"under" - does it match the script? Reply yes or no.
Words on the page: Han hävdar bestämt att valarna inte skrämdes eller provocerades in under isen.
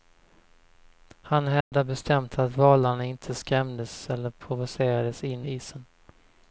no